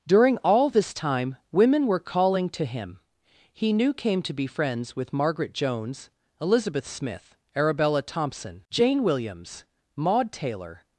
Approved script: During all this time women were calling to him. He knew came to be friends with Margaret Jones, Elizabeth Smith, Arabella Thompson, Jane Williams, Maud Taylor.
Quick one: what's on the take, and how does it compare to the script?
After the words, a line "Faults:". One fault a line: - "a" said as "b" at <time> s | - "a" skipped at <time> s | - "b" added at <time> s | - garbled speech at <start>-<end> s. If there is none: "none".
During all this time women were calling to him. He knew came to be friends with Margaret Jones, Elizabeth Smith, Arabella Thompson, Jane Williams, Maud Taylor.
Faults:
none